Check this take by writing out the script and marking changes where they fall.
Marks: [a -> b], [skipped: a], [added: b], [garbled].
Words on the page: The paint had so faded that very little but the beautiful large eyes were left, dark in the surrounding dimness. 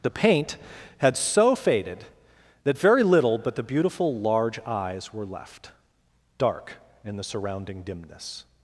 The paint had so faded that very little but the beautiful large eyes were left, dark in the surrounding dimness.